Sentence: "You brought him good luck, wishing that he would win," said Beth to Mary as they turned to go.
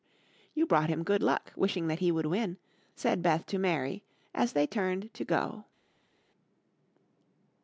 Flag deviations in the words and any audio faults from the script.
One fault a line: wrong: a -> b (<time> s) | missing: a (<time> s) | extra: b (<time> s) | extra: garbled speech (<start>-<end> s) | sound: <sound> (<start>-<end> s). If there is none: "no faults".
no faults